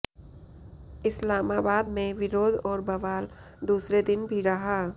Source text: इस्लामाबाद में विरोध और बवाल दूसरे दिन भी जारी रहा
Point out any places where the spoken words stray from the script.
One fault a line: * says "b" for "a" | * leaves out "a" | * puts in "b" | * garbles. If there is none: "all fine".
* leaves out "जारी"